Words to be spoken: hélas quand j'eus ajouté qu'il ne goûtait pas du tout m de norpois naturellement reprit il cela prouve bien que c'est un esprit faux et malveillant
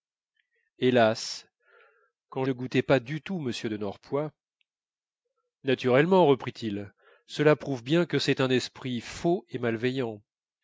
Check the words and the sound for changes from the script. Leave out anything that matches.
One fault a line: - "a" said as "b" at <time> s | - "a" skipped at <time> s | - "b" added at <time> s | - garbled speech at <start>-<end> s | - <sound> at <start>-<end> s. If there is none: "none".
- "j'eus ajouté qu'il" skipped at 2.4 s